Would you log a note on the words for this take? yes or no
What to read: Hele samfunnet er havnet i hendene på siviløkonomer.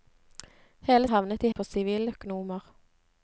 yes